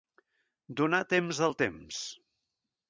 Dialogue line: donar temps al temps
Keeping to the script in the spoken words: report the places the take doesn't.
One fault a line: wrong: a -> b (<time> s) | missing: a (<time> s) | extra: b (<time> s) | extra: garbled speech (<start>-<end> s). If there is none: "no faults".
no faults